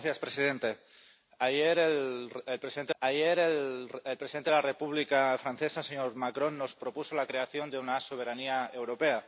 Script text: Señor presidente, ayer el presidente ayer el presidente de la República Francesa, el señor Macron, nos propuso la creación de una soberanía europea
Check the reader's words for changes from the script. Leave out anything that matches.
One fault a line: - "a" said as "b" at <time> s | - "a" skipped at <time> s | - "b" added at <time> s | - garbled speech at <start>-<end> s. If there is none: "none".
none